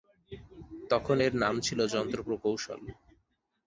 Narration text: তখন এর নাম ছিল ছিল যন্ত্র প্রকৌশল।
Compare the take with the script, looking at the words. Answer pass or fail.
fail